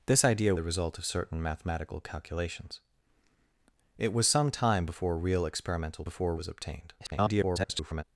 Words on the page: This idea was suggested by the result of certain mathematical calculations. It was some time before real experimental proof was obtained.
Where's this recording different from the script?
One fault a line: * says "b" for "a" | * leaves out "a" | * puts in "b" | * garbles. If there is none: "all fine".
* leaves out "was suggested by"
* says "before" for "proof"
* garbles